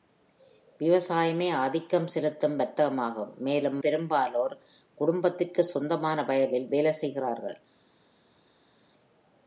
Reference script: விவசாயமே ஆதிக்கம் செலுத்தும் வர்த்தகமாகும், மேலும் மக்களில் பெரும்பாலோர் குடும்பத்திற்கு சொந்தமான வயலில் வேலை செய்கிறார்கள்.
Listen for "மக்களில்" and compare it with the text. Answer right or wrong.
wrong